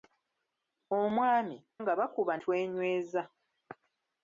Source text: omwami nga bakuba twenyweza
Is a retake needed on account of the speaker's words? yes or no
no